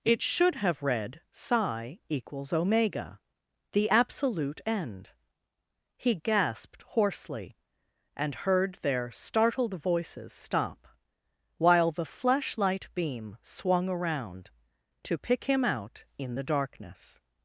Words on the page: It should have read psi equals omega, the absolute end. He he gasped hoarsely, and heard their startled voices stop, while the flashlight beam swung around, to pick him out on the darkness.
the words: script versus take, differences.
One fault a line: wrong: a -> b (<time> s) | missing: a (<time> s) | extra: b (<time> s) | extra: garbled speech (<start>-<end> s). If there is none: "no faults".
missing: he (6.1 s)
wrong: on -> in (16.2 s)